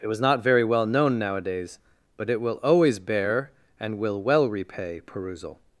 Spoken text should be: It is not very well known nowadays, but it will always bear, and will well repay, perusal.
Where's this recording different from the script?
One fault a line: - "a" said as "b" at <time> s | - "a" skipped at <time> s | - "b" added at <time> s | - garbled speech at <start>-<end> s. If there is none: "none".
- "is" said as "was" at 0.1 s